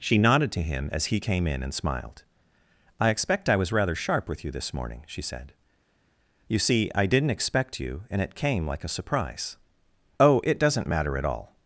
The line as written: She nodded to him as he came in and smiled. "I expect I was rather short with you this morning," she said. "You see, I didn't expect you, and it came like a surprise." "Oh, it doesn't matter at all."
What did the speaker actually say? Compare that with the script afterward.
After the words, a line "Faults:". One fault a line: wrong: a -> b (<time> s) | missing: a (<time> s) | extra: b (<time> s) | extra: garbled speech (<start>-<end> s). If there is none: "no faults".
She nodded to him as he came in and smiled. "I expect I was rather sharp with you this morning," she said. "You see, I didn't expect you, and it came like a surprise." "Oh, it doesn't matter at all."
Faults:
wrong: short -> sharp (3.9 s)